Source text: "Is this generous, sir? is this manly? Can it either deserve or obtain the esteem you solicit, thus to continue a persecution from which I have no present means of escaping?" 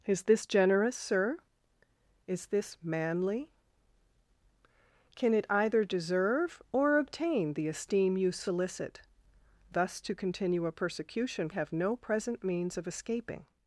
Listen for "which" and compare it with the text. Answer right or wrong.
wrong